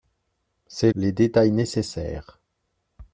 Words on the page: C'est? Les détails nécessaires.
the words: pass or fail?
pass